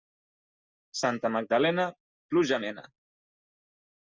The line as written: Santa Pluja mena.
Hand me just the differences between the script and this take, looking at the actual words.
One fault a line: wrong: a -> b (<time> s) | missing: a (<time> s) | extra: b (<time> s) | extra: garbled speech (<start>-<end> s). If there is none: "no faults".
extra: Magdalena (1.3 s)